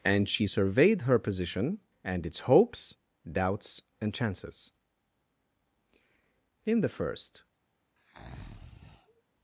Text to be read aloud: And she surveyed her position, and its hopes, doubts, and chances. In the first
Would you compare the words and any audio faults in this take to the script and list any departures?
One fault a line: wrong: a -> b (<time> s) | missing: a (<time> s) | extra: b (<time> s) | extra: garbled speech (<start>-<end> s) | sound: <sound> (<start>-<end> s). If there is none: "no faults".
sound: breath (8.0-9.2 s)